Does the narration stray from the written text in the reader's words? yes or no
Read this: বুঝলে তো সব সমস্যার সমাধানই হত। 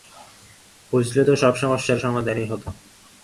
no